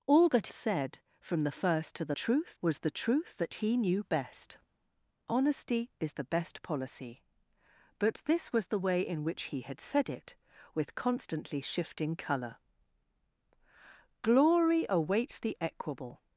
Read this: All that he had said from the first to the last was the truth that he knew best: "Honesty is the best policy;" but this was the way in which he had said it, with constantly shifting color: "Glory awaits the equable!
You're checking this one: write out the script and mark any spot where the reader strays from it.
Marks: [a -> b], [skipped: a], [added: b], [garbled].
All that [skipped: he had] said from the first to the [last -> truth] was the truth that he knew best: "Honesty is the best policy;" but this was the way in which he had said it, with constantly shifting color: "Glory awaits the equable!